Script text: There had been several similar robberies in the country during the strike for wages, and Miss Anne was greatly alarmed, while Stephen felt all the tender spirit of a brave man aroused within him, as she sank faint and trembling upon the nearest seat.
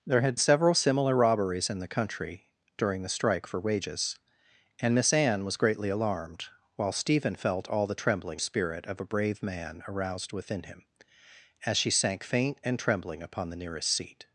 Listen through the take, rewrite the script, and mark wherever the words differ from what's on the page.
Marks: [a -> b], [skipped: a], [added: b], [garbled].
There had [skipped: been] several similar robberies in the country during the strike for wages, and Miss Anne was greatly alarmed, while Stephen felt all the [tender -> trembling] spirit of a brave man aroused within him, as she sank faint and trembling upon the nearest seat.